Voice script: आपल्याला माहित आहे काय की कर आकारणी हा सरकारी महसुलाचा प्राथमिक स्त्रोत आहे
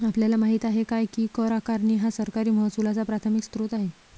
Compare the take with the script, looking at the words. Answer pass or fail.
pass